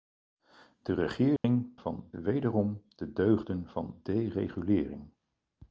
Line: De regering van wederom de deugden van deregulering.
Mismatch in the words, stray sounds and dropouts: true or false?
true